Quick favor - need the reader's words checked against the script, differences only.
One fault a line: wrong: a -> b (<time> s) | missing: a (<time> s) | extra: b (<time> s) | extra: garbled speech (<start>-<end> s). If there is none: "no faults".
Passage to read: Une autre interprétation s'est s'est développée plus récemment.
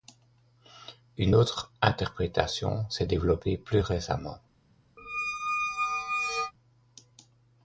missing: s'est (3.0 s)